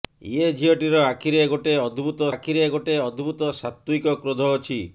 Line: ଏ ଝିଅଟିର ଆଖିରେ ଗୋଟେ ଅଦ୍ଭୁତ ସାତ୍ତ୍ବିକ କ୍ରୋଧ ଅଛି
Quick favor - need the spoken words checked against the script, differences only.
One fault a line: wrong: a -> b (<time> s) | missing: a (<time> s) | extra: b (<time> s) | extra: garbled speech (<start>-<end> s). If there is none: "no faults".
extra: ଆଖିରେ ଗୋଟେ ଅଦ୍ଭୁତ (2.3 s)